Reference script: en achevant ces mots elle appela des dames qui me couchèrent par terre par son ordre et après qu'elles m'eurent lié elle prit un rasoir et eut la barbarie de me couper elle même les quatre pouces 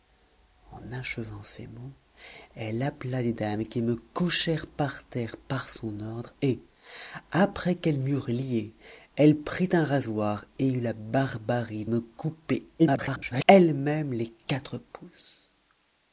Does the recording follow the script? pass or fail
fail